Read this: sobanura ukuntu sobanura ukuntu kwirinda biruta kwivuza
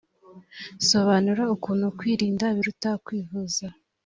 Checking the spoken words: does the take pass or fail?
fail